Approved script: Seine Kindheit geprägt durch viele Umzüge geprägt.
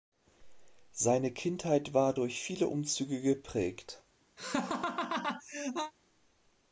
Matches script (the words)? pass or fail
fail